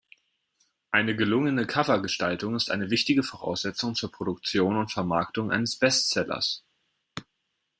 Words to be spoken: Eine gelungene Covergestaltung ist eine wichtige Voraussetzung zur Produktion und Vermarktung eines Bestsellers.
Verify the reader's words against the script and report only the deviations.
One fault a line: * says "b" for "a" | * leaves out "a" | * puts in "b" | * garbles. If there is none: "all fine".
all fine